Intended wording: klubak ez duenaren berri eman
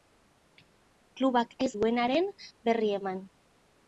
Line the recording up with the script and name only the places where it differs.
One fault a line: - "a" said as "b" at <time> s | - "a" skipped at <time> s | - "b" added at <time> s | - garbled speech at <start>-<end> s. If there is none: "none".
none